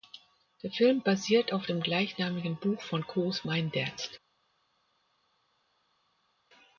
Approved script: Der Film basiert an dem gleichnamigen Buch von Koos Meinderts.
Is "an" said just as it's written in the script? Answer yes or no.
no